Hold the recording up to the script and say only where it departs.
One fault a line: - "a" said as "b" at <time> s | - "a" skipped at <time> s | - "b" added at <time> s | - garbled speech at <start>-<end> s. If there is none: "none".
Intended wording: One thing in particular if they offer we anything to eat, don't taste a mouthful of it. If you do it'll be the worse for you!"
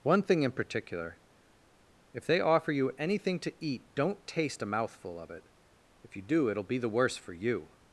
- "we" said as "you" at 2.7 s